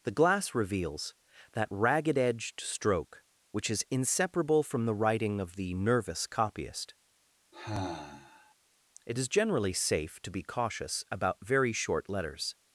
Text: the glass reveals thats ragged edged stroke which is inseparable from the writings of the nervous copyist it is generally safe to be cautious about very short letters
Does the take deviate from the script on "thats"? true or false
true